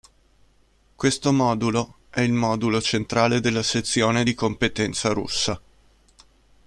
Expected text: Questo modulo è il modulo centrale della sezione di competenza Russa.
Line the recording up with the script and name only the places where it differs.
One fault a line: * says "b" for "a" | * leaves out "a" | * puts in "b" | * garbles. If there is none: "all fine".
all fine